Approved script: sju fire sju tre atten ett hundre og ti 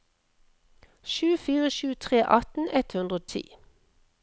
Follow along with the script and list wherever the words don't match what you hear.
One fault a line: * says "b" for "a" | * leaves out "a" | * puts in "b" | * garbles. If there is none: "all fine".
all fine